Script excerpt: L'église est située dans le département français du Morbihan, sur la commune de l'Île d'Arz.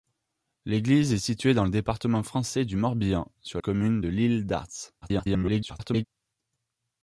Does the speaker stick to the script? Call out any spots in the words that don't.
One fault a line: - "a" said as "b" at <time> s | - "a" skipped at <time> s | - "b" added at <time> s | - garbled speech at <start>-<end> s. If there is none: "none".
- "la" skipped at 3.6 s
- garbled speech at 5.0-6.0 s